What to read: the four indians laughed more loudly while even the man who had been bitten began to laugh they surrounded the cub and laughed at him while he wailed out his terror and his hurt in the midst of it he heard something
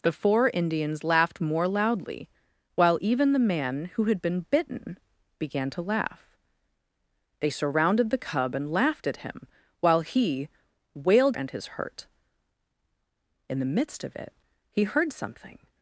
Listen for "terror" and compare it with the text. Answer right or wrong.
wrong